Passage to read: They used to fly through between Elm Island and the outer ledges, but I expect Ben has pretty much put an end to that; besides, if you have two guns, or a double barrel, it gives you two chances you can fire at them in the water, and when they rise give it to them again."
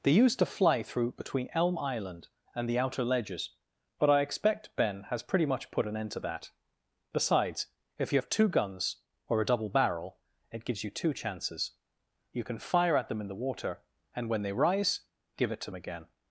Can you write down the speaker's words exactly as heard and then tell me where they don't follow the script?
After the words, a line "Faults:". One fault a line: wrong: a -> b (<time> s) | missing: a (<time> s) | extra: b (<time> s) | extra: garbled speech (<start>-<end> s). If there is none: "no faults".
They used to fly through between Elm Island and the outer ledges, but I expect Ben has pretty much put an end to that; besides, if you have two guns, or a double barrel, it gives you two chances you can fire at them in the water, and when they rise give it to again."
Faults:
missing: them (15.7 s)